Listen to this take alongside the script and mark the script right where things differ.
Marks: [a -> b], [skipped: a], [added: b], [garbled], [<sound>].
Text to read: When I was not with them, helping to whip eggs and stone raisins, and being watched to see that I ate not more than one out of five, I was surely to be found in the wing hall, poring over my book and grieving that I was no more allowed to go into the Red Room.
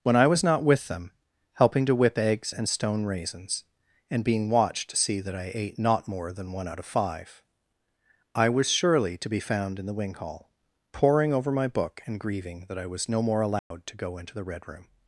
When I was not with them, helping to whip eggs and stone raisins, and being watched to see that I ate not more than one out of five, I was surely to be found in the wing hall, poring over my book and grieving that I was no more allowed [dropout] to go into the Red Room.